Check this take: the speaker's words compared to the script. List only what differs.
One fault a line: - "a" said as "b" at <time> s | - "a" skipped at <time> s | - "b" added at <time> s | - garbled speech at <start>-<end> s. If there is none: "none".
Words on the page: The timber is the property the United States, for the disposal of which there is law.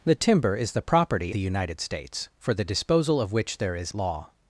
none